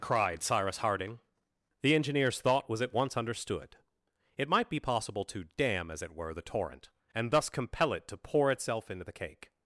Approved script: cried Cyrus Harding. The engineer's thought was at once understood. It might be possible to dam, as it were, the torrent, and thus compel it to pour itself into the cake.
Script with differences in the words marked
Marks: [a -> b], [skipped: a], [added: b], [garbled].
cried Cyrus Harding. The engineer's thought was at once understood. It might be possible to dam, as it were, the torrent, and thus compel it to pour itself into the cake.